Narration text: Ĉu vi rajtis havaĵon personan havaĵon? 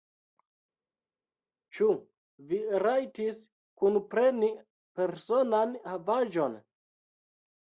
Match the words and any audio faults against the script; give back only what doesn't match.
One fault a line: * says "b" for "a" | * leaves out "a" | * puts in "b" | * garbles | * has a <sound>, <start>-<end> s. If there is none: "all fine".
* says "kunpreni" for "havaĵon"